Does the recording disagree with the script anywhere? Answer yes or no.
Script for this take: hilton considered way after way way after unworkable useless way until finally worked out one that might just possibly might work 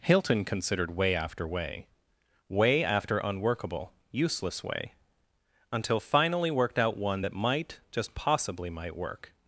no